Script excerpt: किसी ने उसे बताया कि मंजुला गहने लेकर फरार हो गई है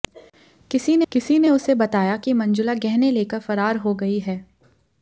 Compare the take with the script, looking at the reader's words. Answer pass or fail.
fail